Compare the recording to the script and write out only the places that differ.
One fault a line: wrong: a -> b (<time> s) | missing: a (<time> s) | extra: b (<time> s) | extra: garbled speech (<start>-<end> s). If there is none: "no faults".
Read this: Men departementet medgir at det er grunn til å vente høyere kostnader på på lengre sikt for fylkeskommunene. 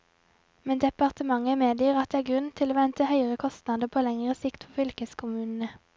missing: på (4.1 s)